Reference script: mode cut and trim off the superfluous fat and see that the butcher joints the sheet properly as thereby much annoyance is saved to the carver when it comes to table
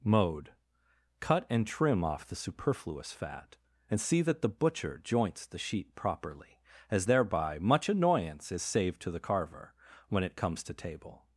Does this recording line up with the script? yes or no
yes